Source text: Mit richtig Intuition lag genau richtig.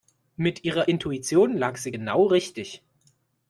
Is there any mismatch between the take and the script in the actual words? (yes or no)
yes